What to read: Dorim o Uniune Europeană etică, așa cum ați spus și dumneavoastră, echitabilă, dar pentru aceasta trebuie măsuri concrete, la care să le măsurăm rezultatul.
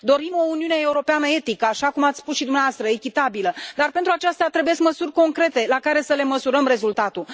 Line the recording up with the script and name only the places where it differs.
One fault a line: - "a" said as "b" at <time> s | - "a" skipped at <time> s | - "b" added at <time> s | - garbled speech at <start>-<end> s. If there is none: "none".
none